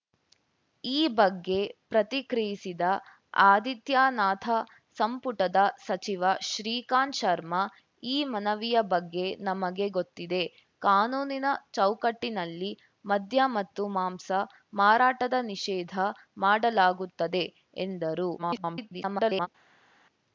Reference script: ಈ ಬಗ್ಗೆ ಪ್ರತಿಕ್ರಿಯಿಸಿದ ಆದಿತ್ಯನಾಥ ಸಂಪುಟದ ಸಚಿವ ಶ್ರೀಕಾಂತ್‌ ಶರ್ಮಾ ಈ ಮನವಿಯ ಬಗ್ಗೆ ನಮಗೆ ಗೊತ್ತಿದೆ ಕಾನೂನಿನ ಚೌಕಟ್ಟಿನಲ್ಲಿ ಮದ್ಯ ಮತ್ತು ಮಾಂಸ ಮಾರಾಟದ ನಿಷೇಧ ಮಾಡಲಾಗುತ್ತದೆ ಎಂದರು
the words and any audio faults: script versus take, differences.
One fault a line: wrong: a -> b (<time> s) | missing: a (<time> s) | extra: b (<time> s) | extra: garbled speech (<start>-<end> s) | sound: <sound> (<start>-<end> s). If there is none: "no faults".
extra: garbled speech (18.4-19.5 s)